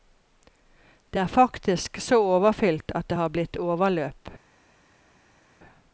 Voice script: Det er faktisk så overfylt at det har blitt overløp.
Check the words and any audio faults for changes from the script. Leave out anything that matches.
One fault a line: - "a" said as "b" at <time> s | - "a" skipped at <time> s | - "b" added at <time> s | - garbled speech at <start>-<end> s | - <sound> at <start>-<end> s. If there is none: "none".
none